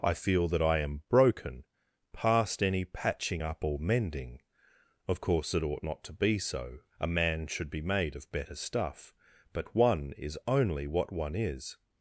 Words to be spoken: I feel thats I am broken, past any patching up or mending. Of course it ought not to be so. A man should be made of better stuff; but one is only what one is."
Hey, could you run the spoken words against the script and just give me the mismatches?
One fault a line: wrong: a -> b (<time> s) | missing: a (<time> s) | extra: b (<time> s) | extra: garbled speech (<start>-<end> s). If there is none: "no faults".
wrong: thats -> that (0.5 s)